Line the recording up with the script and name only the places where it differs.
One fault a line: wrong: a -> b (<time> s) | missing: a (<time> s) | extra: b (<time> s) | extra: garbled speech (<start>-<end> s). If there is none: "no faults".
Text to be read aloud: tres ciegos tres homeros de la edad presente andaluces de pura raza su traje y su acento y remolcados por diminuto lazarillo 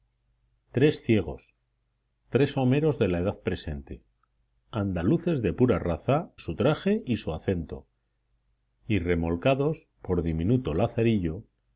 no faults